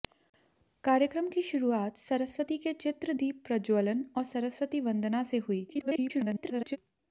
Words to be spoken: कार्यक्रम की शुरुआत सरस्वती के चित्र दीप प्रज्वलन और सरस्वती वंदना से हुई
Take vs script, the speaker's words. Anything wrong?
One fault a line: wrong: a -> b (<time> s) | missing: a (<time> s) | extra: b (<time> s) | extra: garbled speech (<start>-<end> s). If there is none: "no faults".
extra: garbled speech (5.7-6.8 s)